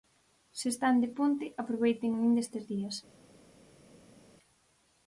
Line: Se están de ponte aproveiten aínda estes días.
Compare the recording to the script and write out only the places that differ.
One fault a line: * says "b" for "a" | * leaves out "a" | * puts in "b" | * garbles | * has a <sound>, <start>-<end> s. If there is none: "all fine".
all fine